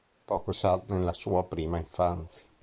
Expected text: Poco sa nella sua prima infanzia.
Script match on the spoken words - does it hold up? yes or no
yes